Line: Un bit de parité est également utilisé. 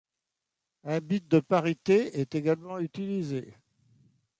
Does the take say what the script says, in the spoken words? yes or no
yes